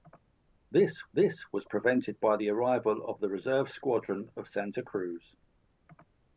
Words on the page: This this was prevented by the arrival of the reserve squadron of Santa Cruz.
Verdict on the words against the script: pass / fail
pass